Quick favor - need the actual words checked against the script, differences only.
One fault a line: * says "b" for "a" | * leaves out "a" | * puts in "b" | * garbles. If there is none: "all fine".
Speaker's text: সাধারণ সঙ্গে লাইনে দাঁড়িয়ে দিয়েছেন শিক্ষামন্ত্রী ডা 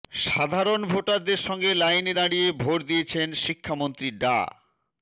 * puts in "ভোটারদের"
* puts in "ভোট"